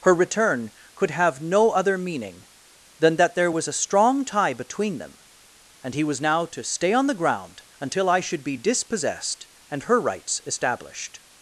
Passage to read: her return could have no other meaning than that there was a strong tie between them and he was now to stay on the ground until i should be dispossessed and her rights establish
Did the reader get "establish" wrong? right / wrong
wrong